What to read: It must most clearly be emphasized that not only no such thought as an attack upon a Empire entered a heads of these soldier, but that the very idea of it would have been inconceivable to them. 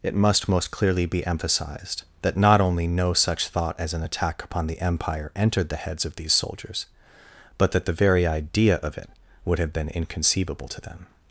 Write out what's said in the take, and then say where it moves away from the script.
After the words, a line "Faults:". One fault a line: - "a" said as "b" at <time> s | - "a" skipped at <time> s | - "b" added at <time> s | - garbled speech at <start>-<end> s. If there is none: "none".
It must most clearly be emphasized that not only no such thought as an attack upon the Empire entered the heads of these soldiers, but that the very idea of it would have been inconceivable to them.
Faults:
- "a" said as "the" at 4.7 s
- "a" said as "the" at 5.7 s
- "soldier" said as "soldiers" at 6.3 s